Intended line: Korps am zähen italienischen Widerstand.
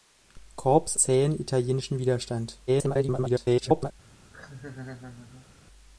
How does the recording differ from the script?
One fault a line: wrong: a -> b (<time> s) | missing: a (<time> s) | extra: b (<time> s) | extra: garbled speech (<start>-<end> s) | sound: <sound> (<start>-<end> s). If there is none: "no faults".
missing: am (1.0 s)
extra: garbled speech (2.7-3.9 s)
sound: laugh (4.3-5.5 s)